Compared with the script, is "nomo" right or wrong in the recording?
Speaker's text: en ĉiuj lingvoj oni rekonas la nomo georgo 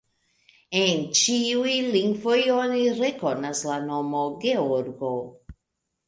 right